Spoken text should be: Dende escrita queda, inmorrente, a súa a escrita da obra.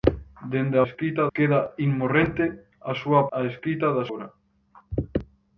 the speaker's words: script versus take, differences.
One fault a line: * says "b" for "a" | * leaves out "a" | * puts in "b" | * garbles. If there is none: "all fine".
all fine